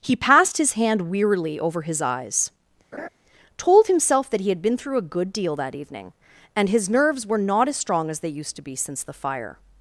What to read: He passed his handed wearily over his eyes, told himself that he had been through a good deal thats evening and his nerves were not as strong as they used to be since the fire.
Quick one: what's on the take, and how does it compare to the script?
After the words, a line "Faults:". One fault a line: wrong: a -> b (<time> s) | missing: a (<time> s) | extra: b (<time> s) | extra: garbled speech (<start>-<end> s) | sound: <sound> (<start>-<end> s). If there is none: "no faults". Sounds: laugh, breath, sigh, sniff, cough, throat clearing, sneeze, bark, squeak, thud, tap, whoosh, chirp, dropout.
He passed his hand wearily over his eyes, told himself that he had been through a good deal that evening and his nerves were not as strong as they used to be since the fire.
Faults:
wrong: handed -> hand (0.7 s)
sound: laugh (2.9-3.1 s)
wrong: thats -> that (5.6 s)